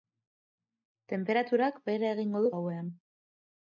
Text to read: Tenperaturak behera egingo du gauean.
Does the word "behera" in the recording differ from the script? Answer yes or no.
no